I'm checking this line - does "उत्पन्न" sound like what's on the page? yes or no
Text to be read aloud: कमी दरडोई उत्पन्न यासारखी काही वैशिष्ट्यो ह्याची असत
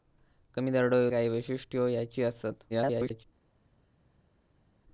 no